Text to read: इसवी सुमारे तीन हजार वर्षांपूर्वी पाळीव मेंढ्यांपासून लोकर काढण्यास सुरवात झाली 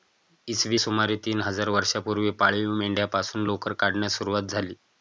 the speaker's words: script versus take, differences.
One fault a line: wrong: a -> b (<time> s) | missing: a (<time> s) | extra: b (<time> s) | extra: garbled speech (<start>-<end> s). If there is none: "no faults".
no faults